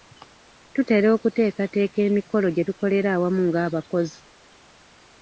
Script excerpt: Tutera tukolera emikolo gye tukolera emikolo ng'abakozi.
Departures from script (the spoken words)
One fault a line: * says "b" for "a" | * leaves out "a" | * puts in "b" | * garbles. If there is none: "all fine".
* says "okuteekateeka" for "tukolera"
* says "awamu" for "emikolo"